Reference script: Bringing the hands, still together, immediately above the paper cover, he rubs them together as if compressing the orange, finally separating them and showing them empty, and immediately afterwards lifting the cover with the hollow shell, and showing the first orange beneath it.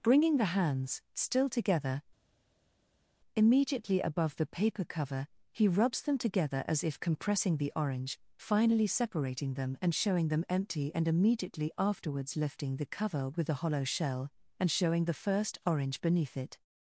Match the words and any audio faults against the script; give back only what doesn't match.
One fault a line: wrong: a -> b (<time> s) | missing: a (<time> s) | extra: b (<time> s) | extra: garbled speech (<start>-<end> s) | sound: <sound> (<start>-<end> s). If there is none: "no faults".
no faults